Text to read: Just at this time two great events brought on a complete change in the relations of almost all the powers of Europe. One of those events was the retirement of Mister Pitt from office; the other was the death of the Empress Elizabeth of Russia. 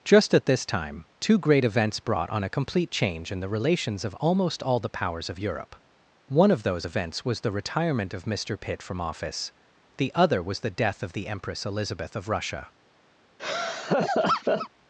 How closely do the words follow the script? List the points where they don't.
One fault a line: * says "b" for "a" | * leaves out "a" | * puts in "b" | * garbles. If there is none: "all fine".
all fine